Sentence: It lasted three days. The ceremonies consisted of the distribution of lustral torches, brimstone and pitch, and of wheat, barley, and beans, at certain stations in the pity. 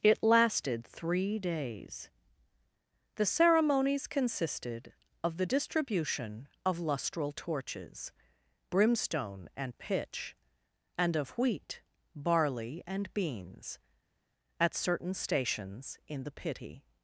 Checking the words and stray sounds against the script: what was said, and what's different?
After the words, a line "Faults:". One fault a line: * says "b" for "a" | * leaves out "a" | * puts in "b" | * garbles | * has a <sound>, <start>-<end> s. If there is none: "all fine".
It lasted three days. The ceremonies consisted of the distribution of lustral torches, brimstone and pitch, and of wheat, barley, and beans, at certain stations in the pity.
Faults:
all fine